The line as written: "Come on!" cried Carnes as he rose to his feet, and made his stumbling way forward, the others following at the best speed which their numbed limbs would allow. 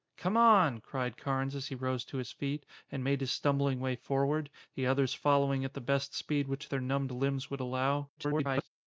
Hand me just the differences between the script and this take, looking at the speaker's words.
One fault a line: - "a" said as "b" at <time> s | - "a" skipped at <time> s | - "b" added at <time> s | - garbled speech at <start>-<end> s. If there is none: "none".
- garbled speech at 8.2-8.7 s